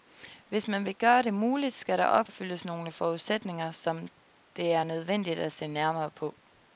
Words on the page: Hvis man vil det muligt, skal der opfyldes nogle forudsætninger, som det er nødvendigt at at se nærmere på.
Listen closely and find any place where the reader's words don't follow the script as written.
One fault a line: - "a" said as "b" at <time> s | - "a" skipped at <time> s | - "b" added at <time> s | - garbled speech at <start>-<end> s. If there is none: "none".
- "gøre" added at 0.9 s
- "at" skipped at 5.5 s